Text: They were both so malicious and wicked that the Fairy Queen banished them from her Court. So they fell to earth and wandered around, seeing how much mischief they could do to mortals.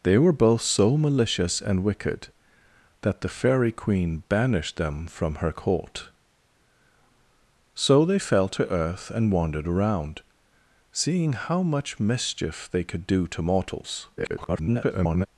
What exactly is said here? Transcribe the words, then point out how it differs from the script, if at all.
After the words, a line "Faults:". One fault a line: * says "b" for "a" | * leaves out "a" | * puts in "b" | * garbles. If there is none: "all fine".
They were both so malicious and wicked that the Fairy Queen banished them from her Court. So they fell to earth and wandered around, seeing how much mischief they could do to mortals. [garbled]
Faults:
* garbles